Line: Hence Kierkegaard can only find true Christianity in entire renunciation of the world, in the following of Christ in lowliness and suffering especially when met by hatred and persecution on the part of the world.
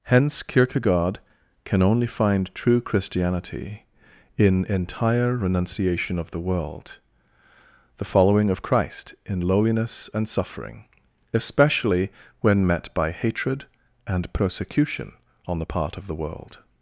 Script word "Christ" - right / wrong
right